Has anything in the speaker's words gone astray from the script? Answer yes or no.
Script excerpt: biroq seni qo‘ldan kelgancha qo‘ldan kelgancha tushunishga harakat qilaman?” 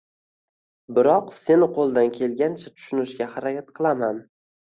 yes